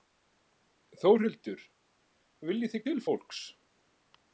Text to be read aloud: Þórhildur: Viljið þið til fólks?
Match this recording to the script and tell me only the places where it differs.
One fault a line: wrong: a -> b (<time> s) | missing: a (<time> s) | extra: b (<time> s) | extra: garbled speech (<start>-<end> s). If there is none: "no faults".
no faults